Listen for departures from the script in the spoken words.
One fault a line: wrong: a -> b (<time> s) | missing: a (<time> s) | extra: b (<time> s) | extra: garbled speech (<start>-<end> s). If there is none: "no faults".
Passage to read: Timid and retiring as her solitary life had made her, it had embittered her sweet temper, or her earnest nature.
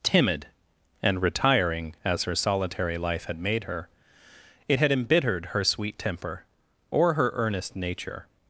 no faults